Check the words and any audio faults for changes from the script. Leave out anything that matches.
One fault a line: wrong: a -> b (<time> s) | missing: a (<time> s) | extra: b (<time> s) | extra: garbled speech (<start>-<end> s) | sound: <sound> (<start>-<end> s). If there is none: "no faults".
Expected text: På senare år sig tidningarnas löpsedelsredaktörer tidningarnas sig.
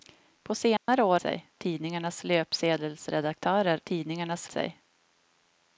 sound: dropout (0.8-0.9 s)